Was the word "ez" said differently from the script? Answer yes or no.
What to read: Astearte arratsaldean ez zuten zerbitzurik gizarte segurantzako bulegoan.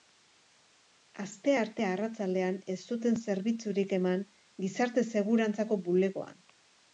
no